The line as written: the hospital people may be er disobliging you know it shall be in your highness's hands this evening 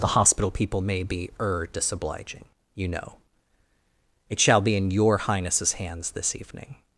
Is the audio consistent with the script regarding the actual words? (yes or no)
yes